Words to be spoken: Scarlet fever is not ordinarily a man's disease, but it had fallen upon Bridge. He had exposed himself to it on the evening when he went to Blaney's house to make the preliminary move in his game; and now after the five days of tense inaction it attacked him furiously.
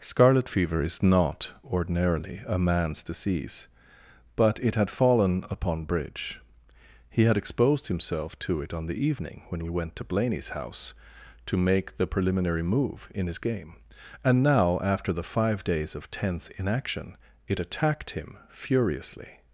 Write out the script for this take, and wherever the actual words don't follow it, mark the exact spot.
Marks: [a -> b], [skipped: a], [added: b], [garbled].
Scarlet fever is not ordinarily a man's disease, but it had fallen upon Bridge. He had exposed himself to it on the evening when he went to Blaney's house to make the preliminary move in his game; and now after the five days of tense inaction it attacked him furiously.